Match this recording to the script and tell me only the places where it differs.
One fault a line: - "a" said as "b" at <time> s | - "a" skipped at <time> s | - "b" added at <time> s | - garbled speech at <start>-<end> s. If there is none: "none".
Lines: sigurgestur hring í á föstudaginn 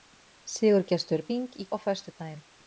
none